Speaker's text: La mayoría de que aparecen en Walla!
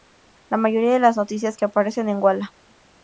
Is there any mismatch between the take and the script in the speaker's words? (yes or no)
yes